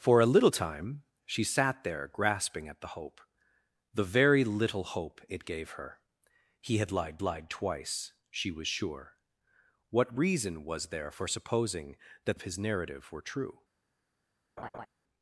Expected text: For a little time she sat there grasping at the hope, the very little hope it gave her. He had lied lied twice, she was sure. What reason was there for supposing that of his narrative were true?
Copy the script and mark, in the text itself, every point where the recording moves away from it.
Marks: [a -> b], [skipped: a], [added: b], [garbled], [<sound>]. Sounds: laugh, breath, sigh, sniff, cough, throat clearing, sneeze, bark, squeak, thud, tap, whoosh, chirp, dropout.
For a little time she sat there grasping at the hope, the very little hope it gave her. He had lied lied twice, she was sure. What reason was there for supposing that of his narrative were true? [laugh]